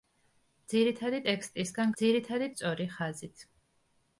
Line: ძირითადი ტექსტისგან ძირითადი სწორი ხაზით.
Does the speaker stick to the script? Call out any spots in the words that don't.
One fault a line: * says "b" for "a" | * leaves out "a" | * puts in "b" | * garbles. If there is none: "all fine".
all fine